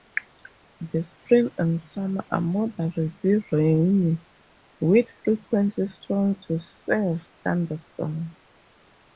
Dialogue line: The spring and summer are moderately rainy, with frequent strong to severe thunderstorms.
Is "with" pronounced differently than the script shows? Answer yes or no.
no